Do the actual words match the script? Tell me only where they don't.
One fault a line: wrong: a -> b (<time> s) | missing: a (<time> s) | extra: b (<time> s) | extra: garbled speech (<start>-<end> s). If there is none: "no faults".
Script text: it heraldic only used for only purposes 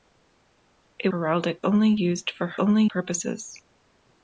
no faults